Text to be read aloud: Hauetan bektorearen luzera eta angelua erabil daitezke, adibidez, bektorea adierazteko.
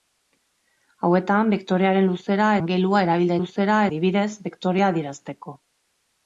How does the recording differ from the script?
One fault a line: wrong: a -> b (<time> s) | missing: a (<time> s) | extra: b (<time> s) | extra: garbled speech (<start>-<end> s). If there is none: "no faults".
missing: eta (2.5 s)
wrong: daitezke -> luzera (3.4 s)